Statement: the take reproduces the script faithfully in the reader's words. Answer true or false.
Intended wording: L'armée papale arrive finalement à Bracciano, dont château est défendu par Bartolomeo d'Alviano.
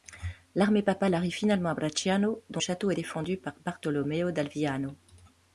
true